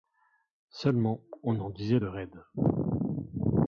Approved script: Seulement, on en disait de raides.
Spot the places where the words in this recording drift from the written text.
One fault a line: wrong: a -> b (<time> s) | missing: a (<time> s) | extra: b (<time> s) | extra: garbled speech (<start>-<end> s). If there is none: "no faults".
no faults